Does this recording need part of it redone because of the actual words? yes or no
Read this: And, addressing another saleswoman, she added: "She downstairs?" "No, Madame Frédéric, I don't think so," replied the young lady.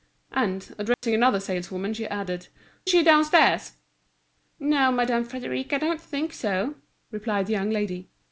no